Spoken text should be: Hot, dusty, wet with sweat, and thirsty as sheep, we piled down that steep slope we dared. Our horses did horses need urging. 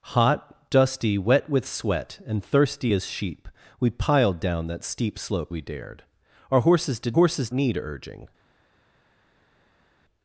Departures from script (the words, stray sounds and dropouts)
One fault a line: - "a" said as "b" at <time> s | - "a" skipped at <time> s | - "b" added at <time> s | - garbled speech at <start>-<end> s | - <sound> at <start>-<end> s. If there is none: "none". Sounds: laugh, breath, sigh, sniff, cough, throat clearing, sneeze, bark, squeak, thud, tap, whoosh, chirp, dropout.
none